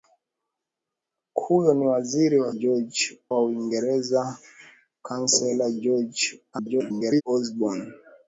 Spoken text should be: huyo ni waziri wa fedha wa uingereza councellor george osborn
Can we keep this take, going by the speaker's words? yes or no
no